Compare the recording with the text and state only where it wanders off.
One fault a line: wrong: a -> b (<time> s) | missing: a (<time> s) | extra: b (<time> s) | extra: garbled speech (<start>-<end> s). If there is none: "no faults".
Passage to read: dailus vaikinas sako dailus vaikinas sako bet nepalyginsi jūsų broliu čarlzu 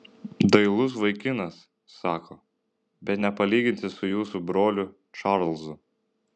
missing: dailus vaikinas sako (2.4 s)
extra: su (4.0 s)